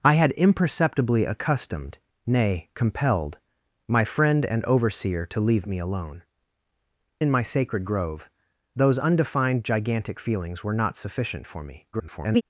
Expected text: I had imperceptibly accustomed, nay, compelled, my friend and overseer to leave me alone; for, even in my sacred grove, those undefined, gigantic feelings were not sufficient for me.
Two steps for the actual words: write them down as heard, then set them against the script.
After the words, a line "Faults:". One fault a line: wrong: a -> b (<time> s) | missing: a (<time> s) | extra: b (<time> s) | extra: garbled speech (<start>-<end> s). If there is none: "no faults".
I had imperceptibly accustomed, nay, compelled, my friend and overseer to leave me alone; in my sacred grove, those undefined, gigantic feelings were not sufficient for me. [garbled]
Faults:
missing: for even (6.2 s)
extra: garbled speech (11.9-12.4 s)